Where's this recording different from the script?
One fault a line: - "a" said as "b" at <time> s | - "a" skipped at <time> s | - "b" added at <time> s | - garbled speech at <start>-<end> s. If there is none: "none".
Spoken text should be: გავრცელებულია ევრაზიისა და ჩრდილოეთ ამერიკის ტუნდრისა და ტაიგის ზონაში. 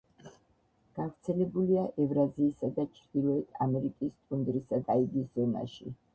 - "და" skipped at 4.8 s